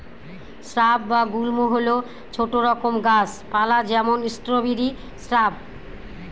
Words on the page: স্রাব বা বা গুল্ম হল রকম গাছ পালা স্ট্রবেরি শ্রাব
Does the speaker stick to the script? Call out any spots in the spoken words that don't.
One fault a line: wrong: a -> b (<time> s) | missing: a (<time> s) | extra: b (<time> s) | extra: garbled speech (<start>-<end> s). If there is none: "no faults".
missing: বা (1.2 s)
extra: ছোট (2.3 s)
extra: যেমন (3.9 s)